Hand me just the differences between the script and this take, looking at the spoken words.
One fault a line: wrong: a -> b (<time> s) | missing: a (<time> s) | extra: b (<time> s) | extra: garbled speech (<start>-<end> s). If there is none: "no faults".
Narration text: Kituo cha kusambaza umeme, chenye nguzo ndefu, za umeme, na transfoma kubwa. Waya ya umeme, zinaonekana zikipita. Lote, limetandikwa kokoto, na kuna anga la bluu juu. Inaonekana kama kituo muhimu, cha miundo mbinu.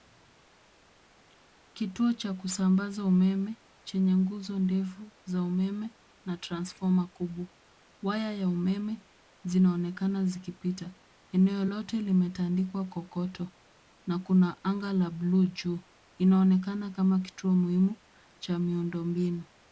extra: Eneo (11.3 s)